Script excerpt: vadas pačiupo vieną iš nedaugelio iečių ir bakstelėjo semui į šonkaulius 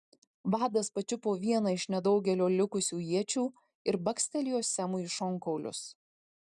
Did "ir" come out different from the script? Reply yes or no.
no